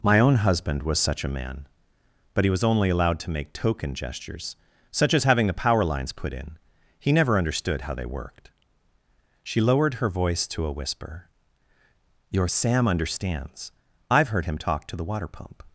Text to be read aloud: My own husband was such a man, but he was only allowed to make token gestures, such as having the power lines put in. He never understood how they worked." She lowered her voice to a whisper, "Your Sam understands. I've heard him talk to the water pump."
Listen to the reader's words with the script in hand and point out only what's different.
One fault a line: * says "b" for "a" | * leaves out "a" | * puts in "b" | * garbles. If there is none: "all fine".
all fine